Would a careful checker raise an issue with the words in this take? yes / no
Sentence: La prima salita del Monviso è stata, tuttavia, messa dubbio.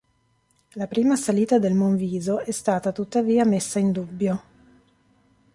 yes